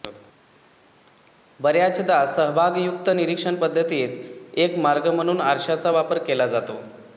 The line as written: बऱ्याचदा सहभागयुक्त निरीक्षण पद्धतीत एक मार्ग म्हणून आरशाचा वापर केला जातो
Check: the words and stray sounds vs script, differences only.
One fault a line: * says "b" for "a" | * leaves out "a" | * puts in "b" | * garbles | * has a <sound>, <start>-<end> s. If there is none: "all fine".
all fine